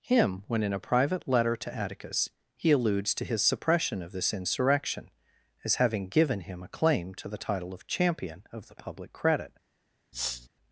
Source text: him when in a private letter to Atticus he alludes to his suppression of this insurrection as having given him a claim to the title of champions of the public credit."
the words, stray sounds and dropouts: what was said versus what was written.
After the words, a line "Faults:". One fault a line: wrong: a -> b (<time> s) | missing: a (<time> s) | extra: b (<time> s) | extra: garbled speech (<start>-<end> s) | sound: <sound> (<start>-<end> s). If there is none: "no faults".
him when in a private letter to Atticus he alludes to his suppression of this insurrection as having given him a claim to the title of champion of the public credit."
Faults:
wrong: champions -> champion (7.9 s)
sound: sniff (10.1-10.5 s)